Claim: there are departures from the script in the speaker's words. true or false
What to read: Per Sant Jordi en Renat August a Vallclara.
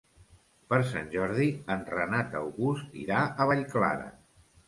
true